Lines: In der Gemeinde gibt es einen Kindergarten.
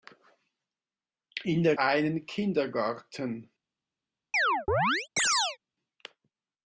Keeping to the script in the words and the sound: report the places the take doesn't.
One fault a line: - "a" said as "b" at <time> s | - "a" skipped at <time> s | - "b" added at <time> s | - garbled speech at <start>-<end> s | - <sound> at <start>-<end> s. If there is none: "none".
- "Gemeinde gibt es" skipped at 1.8 s
- chirp at 4.3-5.6 s